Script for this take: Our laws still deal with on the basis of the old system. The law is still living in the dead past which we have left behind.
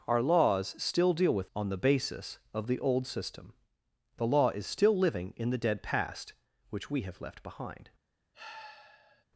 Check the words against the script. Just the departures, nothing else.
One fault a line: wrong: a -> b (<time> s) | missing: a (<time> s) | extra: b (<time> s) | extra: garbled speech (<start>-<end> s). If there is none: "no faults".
no faults